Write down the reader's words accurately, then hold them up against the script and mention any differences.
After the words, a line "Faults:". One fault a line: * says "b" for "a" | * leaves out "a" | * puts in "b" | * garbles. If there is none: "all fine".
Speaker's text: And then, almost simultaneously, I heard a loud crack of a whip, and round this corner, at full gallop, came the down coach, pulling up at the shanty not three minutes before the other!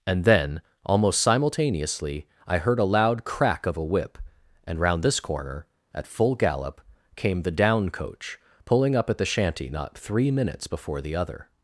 And then, almost simultaneously, I heard a loud crack of a whip, and round this corner, at full gallop, came the down coach, pulling up at the shanty not three minutes before the other!
Faults:
all fine